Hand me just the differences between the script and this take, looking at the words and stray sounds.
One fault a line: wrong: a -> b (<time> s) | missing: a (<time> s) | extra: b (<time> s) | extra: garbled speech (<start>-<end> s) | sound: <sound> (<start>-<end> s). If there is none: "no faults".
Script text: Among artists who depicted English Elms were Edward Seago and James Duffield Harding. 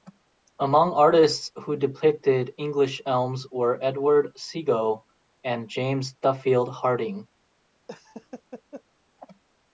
sound: laugh (7.9-8.8 s)